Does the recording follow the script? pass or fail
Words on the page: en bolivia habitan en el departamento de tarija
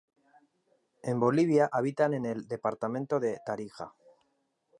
pass